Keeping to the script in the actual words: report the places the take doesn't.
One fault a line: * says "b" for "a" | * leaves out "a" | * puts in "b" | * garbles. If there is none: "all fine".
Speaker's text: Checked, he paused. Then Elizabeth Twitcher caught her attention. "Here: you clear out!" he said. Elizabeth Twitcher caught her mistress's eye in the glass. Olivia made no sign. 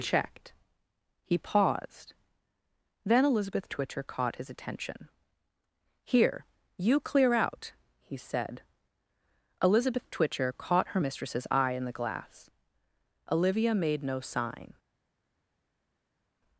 * says "his" for "her"